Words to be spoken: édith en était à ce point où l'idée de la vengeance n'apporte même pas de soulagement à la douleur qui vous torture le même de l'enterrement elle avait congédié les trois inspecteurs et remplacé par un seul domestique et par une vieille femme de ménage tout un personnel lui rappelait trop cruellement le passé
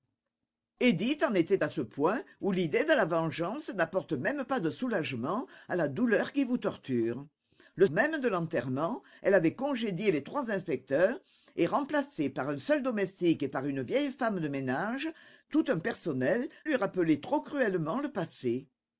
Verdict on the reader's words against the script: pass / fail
pass